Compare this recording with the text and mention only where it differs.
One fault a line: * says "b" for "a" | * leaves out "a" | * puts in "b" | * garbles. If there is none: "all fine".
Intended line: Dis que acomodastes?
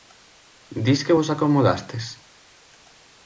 * puts in "vos"